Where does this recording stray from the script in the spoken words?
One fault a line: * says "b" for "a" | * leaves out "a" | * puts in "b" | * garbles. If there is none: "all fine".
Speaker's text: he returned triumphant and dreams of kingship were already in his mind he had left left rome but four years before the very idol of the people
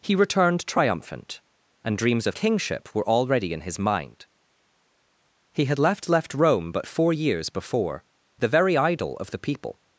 all fine